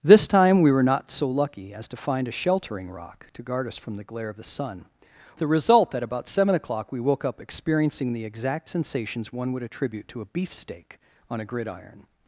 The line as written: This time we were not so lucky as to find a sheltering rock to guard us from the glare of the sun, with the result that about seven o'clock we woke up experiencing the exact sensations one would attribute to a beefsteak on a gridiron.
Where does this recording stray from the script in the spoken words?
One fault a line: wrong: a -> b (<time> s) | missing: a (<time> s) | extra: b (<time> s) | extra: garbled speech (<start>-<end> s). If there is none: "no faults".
missing: with (4.8 s)